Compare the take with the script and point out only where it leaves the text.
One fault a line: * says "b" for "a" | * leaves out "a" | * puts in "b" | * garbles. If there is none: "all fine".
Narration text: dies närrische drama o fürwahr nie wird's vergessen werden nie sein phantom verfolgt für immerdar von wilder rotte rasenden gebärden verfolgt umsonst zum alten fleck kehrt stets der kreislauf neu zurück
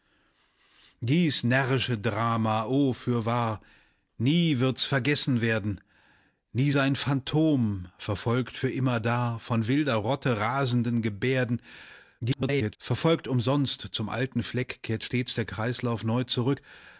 * garbles